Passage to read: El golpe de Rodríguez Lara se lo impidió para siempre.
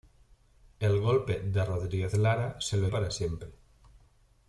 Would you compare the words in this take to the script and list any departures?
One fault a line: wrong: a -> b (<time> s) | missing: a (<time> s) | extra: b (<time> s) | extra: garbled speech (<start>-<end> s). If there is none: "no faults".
missing: impidió (2.9 s)